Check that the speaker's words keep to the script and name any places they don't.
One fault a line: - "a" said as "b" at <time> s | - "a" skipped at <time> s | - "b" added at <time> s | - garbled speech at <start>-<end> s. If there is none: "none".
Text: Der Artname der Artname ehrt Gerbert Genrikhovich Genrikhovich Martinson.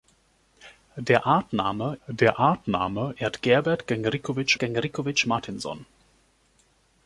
none